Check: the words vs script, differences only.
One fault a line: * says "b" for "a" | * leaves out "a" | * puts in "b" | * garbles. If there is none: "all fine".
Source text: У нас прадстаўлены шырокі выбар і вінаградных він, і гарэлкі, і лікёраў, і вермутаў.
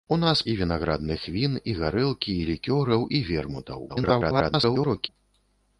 * leaves out "прадстаўлены шырокі выбар"
* garbles